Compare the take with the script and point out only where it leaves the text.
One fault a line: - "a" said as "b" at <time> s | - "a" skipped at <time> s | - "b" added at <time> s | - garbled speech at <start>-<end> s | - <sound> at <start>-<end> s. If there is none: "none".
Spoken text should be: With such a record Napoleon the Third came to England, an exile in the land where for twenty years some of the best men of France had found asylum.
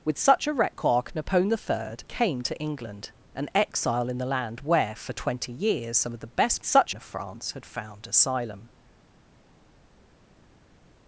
- "men" said as "such" at 6.6 s